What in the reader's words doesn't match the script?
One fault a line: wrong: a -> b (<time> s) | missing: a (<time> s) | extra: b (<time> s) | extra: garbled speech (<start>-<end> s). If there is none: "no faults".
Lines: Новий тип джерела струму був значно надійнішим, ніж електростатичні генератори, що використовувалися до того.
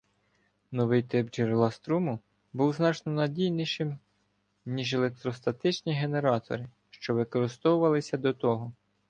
no faults